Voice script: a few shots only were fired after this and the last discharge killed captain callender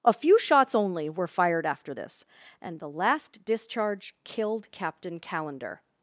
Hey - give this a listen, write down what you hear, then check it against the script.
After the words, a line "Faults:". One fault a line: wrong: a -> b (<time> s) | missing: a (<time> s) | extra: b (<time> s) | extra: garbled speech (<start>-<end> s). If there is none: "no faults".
a few shots only were fired after this and the last discharge killed captain callender
Faults:
no faults